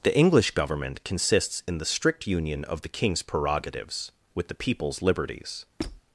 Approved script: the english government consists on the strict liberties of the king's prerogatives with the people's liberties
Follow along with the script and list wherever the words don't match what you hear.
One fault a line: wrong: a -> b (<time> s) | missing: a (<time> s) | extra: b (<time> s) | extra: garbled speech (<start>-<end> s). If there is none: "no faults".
wrong: on -> in (1.7 s)
wrong: liberties -> union (2.2 s)